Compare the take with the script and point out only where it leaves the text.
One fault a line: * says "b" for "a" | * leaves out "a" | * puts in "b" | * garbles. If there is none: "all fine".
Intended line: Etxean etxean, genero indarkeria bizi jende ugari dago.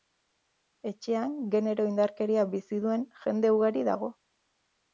* leaves out "etxean"
* puts in "duen"